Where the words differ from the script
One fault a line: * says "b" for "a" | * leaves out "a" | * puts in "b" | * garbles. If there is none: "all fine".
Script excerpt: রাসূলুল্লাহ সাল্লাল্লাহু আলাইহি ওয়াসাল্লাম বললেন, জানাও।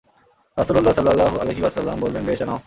* puts in "বেশ"